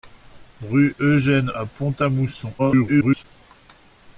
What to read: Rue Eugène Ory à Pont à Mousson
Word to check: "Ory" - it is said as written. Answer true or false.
false